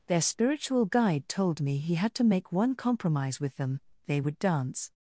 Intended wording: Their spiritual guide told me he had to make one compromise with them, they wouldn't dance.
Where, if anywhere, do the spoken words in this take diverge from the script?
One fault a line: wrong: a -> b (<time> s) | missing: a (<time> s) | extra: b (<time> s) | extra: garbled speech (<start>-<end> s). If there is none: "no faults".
wrong: wouldn't -> would (4.2 s)